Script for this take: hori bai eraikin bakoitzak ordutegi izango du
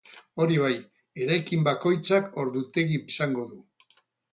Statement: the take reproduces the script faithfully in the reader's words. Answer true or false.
true